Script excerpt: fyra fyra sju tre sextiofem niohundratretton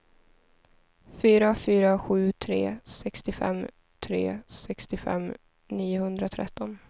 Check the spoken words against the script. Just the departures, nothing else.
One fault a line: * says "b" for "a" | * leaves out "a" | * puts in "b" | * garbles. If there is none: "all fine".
* puts in "tre sextiofem"